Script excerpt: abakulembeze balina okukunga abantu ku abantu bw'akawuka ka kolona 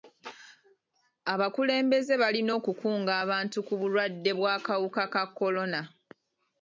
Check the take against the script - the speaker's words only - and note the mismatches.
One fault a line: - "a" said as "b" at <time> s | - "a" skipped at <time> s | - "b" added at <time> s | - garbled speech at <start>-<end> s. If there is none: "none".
- "abantu" said as "bulwadde" at 3.8 s